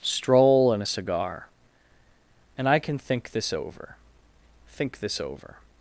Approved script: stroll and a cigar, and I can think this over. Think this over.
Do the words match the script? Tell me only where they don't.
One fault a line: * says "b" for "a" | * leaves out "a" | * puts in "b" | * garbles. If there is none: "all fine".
all fine